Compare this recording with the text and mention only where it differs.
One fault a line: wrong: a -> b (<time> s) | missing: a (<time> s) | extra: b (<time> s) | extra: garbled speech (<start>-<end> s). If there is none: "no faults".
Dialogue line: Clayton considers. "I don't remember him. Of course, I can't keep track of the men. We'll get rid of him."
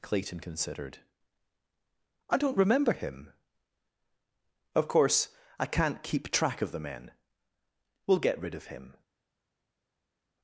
wrong: considers -> considered (0.4 s)